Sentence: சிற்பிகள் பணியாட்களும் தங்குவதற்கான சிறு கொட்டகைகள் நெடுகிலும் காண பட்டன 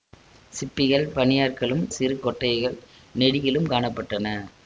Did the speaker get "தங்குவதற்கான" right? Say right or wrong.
wrong